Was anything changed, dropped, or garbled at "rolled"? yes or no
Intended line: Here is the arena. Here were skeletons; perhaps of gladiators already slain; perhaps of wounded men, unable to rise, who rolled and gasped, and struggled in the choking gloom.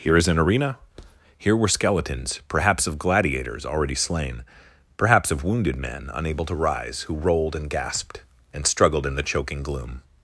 no